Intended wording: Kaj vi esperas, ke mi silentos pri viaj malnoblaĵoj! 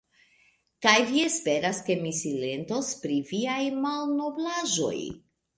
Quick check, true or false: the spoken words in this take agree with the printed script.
true